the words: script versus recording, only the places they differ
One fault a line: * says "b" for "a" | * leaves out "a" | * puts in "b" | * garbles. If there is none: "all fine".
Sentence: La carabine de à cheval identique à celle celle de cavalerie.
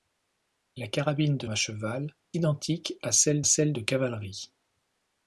all fine